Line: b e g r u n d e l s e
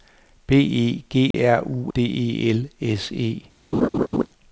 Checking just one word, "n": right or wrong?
wrong